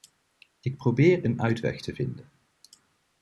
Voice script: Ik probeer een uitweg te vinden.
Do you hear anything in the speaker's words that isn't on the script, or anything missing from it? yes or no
no